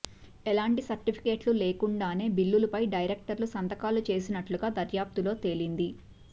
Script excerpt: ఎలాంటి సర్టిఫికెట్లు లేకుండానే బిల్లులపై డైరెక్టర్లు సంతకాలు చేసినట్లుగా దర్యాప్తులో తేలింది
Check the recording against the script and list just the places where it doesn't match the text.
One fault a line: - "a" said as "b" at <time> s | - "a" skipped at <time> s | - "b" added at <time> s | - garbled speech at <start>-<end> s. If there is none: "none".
none